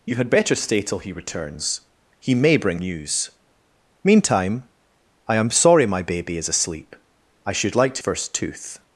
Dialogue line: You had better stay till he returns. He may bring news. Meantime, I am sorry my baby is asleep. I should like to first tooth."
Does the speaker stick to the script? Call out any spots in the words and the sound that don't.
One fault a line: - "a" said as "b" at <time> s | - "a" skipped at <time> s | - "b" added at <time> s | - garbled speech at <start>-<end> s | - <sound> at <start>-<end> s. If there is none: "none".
none